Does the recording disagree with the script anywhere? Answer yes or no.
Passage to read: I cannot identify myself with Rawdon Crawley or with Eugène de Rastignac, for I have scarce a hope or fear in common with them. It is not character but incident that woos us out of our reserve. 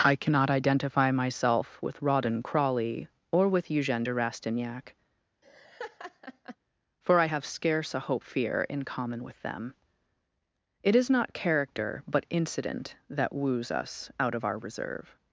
yes